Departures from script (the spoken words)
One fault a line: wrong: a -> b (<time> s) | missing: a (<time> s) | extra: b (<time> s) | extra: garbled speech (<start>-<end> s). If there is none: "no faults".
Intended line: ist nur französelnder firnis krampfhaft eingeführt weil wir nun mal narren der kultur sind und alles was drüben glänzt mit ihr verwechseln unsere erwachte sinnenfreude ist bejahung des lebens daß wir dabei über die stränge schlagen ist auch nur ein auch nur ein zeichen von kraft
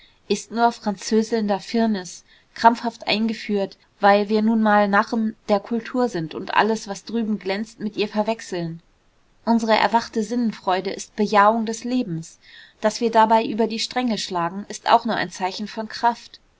missing: auch nur ein (15.3 s)